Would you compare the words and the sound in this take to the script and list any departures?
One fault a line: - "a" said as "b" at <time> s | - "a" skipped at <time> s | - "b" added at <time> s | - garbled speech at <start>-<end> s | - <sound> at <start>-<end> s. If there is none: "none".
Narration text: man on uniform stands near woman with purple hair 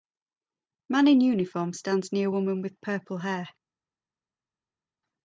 - "on" said as "in" at 1.1 s